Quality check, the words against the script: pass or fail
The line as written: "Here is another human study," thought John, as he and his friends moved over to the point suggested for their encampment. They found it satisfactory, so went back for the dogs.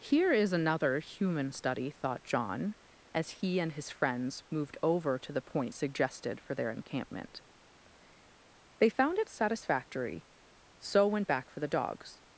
pass